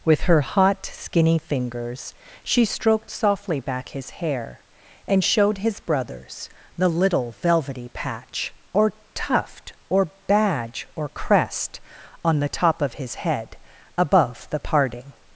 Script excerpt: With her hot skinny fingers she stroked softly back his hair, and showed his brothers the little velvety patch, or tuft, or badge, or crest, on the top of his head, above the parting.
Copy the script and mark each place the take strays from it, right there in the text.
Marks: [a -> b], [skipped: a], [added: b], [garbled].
With her hot skinny fingers she stroked softly back his hair, and showed his brothers the little velvety patch, or tuft, or badge, or crest, on the top of his head, above the parting.